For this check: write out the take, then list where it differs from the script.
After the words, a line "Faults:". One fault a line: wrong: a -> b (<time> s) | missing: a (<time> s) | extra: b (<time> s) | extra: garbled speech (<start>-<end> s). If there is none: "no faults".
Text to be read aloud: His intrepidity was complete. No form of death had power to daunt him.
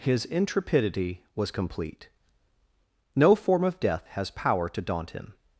His intrepidity was complete. No form of death has power to daunt him.
Faults:
wrong: had -> has (4.1 s)